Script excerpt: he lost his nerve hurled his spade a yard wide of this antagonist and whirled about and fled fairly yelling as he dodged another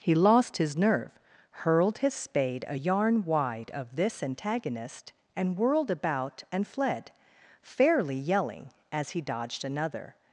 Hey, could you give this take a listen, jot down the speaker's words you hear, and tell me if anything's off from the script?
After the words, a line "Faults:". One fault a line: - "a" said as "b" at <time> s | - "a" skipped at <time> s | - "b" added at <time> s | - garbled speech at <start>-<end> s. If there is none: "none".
he lost his nerve hurled his spade a yarn wide of this antagonist and whirled about and fled fairly yelling as he dodged another
Faults:
- "yard" said as "yarn" at 2.7 s